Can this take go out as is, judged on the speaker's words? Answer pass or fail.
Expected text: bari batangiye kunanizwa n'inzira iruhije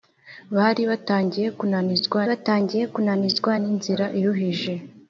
fail